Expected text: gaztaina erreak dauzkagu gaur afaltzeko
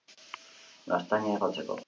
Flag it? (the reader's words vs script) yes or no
yes